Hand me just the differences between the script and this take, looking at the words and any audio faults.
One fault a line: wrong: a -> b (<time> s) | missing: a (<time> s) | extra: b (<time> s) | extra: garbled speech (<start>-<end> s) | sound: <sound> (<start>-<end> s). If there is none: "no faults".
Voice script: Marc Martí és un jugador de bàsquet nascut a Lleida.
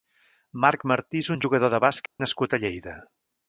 sound: dropout (2.1-2.2 s)